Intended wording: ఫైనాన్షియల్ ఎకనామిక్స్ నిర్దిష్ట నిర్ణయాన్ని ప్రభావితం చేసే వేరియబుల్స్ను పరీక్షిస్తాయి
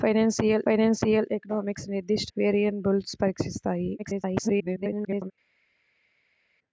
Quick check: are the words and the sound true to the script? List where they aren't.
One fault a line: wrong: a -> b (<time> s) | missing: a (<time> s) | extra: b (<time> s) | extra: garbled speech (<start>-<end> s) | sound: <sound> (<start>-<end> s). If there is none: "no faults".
extra: ఫైనాన్షియల్ (0.6 s)
missing: నిర్ణయాన్ని ప్రభావితం చేసే (2.3 s)
extra: garbled speech (4.0-5.3 s)